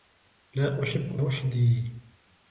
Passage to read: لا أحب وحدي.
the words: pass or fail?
pass